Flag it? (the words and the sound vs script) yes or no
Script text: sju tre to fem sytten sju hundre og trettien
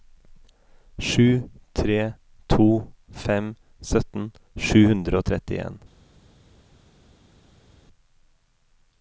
no